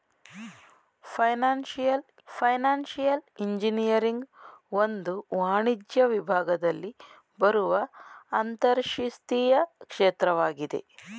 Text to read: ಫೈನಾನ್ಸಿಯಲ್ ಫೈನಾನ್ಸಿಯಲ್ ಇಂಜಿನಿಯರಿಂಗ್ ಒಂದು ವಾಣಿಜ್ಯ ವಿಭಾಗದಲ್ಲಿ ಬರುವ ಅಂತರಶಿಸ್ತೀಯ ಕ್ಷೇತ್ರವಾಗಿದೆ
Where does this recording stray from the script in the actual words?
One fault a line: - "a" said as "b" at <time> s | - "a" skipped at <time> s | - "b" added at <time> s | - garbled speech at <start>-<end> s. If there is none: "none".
none